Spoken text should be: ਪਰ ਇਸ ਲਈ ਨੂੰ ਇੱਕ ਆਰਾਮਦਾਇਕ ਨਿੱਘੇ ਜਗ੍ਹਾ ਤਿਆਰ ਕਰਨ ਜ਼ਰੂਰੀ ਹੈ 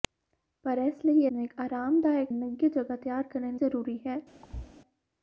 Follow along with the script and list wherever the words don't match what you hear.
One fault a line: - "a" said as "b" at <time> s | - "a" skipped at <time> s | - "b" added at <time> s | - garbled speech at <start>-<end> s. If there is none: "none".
none